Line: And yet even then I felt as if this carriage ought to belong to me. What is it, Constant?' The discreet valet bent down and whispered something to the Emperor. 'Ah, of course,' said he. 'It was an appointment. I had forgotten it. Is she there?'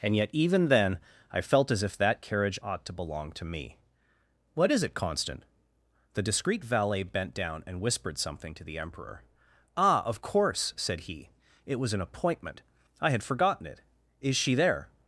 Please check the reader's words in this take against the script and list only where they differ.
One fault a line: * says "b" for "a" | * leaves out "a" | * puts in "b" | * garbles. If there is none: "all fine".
* says "that" for "this"